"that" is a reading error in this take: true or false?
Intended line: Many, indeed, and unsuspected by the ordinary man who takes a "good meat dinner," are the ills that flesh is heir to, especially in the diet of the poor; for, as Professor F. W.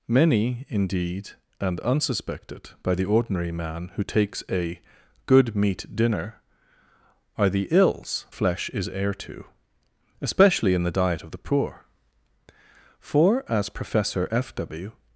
true